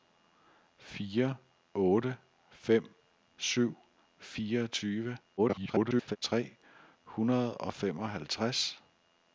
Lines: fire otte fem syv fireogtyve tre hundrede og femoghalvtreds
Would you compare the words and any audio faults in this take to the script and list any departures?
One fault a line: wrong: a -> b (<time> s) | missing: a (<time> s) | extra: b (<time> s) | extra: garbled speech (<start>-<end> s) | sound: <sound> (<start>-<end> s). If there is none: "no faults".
extra: garbled speech (5.4-6.2 s)